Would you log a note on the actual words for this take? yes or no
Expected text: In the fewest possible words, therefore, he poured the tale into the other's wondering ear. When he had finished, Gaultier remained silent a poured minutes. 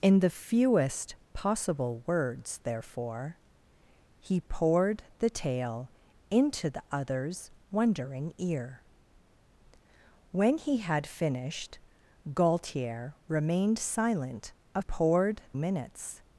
no